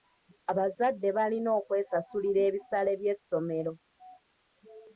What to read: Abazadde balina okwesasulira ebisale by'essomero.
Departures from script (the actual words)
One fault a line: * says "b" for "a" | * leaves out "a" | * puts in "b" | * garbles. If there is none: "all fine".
all fine